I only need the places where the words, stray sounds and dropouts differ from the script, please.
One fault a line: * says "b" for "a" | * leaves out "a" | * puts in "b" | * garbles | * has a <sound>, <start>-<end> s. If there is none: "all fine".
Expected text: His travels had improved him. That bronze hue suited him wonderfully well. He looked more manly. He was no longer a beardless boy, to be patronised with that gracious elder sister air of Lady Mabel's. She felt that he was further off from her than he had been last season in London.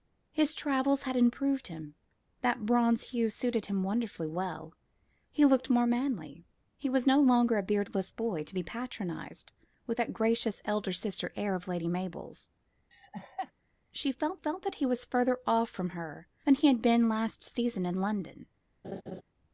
* has a laugh, 12.9-13.5 s
* puts in "felt"
* has a laugh, 18.8-19.2 s